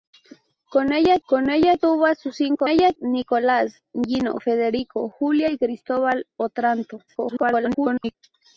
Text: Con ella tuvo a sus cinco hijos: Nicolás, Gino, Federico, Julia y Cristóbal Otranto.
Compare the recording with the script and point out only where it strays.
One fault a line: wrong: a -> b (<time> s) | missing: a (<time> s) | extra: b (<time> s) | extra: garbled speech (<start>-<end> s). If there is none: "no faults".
extra: con ella (1.3 s)
wrong: hijos -> ella (2.7 s)
extra: garbled speech (7.1-8.1 s)